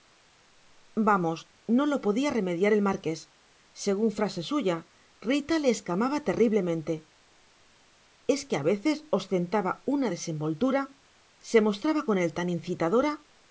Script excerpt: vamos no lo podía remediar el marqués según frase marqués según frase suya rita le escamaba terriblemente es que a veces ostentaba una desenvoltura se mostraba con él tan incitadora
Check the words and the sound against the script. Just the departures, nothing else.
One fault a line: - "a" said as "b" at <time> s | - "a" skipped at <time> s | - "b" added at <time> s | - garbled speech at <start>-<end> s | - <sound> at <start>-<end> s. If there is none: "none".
- "marqués según frase" skipped at 4.4 s